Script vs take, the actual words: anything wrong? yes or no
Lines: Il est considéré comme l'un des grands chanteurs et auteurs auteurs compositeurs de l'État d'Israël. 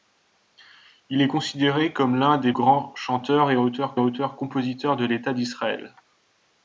no